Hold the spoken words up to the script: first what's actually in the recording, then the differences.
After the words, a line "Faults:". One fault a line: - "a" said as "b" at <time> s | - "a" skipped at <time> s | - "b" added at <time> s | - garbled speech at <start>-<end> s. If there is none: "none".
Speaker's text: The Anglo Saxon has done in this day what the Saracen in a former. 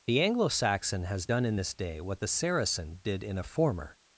The Anglo Saxon has done in this day what the Saracen did in a former.
Faults:
- "did" added at 3.0 s